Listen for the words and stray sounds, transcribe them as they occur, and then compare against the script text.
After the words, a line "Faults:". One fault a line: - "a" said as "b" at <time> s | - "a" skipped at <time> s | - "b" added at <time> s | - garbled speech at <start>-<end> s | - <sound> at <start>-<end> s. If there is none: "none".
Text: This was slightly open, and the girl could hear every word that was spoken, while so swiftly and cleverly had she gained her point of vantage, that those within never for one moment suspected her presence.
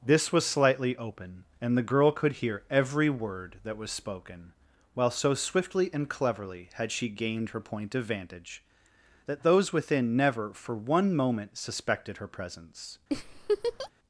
This was slightly open, and the girl could hear every word that was spoken, while so swiftly and cleverly had she gained her point of vantage, that those within never for one moment suspected her presence.
Faults:
- laugh at 13.1-13.9 s